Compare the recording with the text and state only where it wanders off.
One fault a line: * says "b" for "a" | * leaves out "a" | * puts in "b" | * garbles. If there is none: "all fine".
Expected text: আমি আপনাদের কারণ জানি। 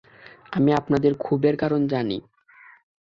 * puts in "ক্ষোভের"